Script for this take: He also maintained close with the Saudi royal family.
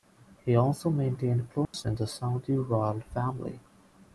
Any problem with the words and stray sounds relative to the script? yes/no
yes